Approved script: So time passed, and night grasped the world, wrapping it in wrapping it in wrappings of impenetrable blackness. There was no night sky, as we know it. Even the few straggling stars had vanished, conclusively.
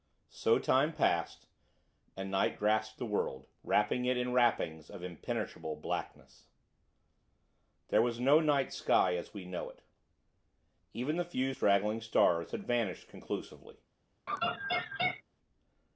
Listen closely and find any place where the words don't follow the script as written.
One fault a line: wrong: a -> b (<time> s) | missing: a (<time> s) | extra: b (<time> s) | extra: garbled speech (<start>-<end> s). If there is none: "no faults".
missing: wrapping it in (4.3 s)